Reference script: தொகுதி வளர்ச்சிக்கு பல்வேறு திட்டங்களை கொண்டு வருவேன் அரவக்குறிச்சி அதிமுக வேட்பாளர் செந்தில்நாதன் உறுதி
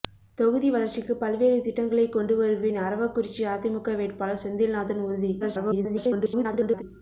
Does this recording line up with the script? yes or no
no